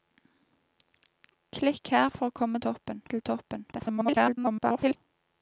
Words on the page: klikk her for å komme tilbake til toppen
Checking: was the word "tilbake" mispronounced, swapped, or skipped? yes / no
yes